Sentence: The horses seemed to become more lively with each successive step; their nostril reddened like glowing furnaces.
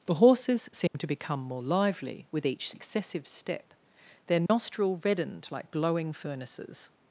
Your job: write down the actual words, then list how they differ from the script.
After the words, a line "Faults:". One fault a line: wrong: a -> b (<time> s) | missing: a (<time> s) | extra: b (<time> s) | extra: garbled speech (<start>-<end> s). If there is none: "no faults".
The horses seemed to become more lively with each successive step; their nostril reddened like glowing furnaces.
Faults:
no faults